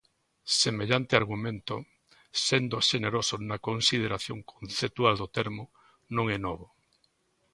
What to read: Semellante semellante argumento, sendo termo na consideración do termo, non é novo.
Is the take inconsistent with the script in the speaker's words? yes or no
yes